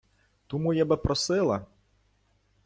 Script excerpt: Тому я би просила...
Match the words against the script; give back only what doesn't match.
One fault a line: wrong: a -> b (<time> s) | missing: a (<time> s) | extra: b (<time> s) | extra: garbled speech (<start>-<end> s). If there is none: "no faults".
no faults